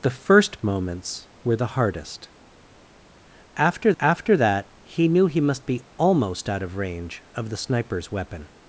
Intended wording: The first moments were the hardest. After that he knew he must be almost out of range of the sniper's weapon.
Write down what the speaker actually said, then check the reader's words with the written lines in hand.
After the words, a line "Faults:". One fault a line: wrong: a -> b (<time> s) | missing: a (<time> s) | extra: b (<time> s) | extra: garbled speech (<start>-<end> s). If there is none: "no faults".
The first moments were the hardest. After after that he knew he must be almost out of range of the sniper's weapon.
Faults:
extra: after (4.0 s)